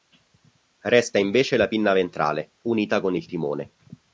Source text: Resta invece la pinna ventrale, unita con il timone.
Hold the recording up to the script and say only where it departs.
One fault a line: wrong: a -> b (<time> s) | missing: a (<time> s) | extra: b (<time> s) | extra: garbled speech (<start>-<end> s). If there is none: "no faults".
no faults